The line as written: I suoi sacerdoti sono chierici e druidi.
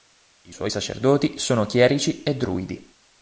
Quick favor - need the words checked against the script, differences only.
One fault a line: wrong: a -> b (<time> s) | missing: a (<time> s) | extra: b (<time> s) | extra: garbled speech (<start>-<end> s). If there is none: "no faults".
no faults